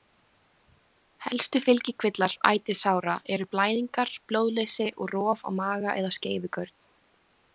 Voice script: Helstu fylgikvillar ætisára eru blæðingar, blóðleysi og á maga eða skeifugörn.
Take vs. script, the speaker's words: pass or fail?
fail